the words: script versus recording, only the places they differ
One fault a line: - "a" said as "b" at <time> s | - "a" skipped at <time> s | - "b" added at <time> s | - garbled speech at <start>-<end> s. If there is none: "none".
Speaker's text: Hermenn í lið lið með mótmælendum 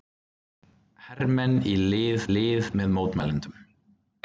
none